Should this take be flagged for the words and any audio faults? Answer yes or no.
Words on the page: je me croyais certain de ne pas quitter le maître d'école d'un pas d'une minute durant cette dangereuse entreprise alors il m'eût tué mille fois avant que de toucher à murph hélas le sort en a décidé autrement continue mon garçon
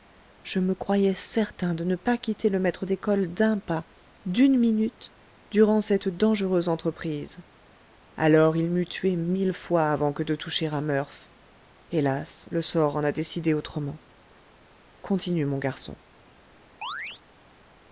yes